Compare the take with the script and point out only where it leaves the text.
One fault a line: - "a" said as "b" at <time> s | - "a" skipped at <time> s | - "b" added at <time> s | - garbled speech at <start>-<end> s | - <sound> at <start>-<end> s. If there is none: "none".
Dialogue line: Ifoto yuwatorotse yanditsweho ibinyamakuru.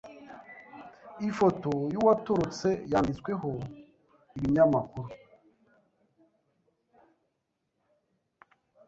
none